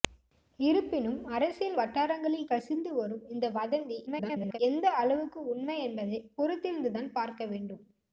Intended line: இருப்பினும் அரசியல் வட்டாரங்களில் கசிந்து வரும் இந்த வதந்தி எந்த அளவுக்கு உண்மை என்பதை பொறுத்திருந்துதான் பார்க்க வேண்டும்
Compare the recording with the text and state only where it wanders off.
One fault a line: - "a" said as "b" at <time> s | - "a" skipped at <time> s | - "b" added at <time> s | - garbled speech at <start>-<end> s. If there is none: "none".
- garbled speech at 4.1-4.6 s